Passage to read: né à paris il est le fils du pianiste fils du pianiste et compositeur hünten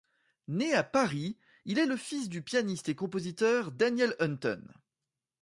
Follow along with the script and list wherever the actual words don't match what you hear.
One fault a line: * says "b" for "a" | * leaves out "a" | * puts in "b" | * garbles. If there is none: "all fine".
* leaves out "fils du pianiste"
* puts in "daniel"